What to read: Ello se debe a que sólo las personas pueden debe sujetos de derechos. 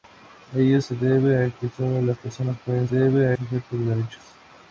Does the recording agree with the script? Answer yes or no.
yes